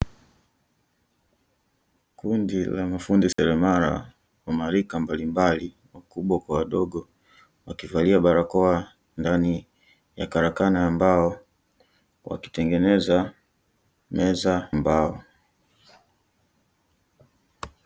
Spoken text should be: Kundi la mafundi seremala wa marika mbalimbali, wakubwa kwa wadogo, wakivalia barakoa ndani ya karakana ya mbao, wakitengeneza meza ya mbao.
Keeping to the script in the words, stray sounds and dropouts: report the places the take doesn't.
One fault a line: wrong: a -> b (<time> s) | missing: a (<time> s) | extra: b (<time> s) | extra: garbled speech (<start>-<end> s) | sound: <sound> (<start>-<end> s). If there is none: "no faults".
sound: dropout (3.3-3.4 s)
missing: ya (14.7 s)